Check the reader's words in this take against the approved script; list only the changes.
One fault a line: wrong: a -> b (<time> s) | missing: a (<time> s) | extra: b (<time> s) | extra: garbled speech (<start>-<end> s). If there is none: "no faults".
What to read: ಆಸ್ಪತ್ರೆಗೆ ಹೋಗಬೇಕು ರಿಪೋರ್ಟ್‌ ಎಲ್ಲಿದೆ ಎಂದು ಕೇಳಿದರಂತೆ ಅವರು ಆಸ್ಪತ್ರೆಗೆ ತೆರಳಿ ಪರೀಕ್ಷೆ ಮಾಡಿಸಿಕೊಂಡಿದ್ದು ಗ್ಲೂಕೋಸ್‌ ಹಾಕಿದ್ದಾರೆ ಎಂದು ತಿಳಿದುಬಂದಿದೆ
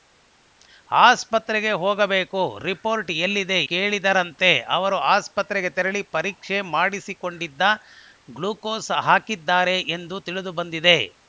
missing: ಎಂದು (3.6 s)